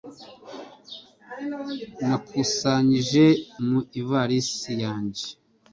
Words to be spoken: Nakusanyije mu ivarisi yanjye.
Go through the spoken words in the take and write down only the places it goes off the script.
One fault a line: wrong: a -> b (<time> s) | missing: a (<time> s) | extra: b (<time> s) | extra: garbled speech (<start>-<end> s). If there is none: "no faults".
no faults